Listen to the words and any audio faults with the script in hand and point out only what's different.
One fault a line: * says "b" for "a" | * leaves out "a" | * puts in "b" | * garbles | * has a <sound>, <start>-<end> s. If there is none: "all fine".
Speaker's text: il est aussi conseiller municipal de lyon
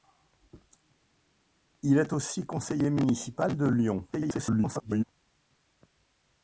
* garbles